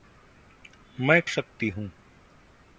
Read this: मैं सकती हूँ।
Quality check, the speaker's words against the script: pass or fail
pass